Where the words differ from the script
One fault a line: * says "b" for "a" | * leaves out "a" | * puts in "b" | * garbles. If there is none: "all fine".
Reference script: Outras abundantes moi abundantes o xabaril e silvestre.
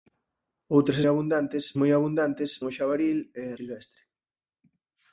all fine